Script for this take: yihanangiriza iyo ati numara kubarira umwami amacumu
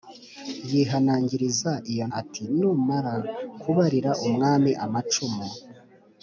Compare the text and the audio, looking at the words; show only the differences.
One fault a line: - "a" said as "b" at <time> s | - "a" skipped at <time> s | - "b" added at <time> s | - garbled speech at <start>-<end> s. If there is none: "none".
none